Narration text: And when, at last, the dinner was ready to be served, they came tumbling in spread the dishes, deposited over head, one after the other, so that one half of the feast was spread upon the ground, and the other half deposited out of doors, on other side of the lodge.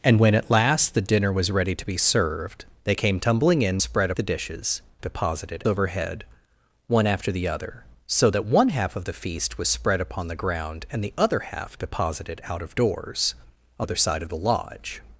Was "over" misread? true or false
false